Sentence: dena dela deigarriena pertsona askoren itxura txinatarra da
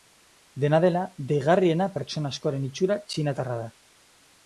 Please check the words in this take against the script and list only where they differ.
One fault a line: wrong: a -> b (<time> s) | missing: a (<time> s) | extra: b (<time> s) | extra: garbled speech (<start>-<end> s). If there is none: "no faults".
no faults